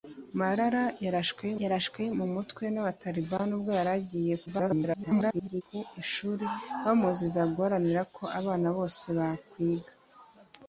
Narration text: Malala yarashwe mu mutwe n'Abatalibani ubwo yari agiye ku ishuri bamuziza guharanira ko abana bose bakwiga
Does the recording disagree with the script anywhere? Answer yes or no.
yes